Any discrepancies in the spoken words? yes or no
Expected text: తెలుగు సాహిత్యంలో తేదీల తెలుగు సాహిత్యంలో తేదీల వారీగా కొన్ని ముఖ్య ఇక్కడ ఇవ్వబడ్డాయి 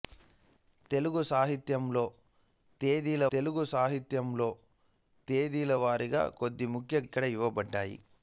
no